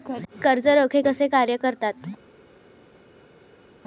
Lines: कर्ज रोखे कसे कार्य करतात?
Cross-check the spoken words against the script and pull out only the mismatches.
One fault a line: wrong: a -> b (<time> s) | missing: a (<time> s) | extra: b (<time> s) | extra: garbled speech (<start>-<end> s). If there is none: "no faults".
no faults